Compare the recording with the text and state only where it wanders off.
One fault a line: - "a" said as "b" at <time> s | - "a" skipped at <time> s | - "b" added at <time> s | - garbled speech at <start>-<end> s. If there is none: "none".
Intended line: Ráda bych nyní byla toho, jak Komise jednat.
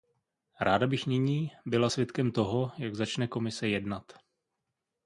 - "svědkem" added at 1.9 s
- "začne" added at 3.0 s